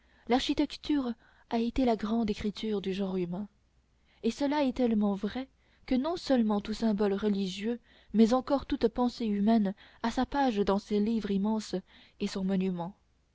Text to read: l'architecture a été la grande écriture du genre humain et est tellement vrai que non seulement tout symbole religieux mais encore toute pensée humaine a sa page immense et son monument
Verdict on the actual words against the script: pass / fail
fail